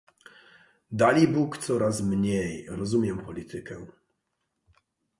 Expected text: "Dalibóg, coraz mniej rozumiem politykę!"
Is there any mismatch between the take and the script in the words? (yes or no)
no